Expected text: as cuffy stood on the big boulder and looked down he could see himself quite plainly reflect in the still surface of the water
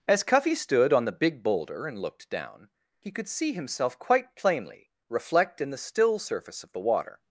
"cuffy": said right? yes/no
yes